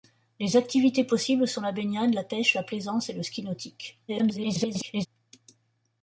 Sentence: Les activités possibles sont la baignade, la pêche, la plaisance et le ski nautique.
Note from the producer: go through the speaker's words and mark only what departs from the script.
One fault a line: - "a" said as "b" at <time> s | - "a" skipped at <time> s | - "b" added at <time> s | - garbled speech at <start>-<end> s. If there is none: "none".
- garbled speech at 4.1-5.1 s